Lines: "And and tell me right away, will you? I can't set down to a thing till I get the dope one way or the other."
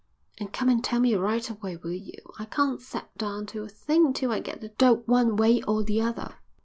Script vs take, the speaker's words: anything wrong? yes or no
yes